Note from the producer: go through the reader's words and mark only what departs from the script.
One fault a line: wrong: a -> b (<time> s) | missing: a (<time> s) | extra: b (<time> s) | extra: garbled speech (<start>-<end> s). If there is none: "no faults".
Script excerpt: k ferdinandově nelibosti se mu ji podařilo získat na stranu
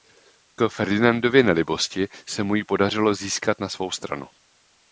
extra: svou (3.7 s)